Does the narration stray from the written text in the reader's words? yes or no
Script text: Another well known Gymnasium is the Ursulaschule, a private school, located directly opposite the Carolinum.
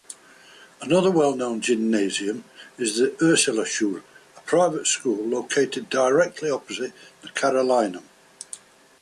no